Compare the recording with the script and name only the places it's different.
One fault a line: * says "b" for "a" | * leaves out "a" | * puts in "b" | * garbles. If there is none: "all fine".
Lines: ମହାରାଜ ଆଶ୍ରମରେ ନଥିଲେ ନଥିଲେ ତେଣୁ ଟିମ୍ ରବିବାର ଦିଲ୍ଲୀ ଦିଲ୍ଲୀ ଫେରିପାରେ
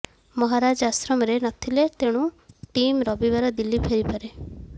* leaves out "ନଥିଲେ"
* leaves out "ଦିଲ୍ଲୀ"